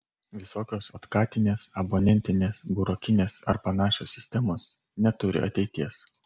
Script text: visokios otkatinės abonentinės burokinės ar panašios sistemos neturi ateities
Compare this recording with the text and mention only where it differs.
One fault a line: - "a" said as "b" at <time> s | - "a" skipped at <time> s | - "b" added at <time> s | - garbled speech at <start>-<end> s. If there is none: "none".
none